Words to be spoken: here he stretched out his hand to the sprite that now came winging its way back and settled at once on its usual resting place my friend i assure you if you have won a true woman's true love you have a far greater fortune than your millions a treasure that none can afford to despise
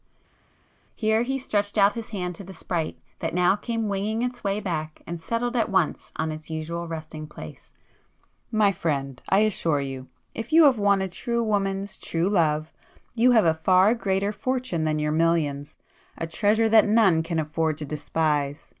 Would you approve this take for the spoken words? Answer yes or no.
yes